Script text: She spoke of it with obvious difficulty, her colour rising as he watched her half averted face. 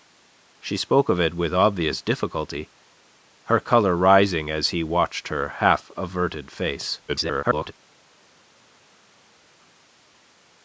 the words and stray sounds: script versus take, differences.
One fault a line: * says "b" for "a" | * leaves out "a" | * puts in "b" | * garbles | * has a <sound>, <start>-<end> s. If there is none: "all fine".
* garbles